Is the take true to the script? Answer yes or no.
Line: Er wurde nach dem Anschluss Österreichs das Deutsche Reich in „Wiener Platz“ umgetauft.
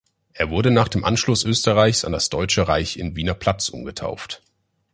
no